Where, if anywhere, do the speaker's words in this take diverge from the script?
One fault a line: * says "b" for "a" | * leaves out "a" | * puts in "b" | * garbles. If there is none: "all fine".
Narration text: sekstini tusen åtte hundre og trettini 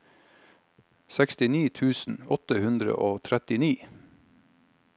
all fine